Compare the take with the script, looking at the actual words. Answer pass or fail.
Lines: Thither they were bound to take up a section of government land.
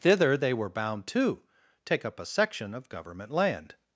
pass